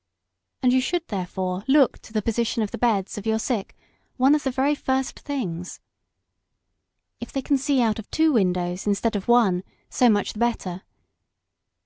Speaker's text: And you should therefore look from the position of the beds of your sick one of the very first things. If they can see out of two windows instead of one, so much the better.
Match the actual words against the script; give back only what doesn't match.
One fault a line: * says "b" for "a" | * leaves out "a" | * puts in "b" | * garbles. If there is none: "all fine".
* says "to" for "from"